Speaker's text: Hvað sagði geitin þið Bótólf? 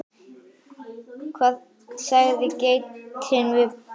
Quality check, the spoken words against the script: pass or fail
fail